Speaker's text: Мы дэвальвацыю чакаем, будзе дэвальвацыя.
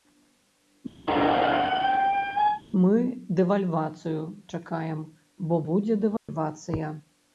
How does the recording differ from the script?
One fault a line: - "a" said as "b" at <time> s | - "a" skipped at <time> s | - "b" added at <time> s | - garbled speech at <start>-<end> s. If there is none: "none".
- "бо" added at 5.5 s